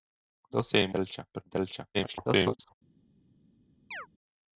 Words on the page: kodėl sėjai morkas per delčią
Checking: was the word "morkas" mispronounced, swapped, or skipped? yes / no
yes